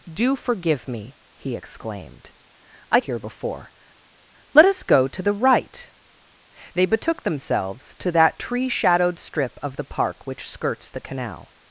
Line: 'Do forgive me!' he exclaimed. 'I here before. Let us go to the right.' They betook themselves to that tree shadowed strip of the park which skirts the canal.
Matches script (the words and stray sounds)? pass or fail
pass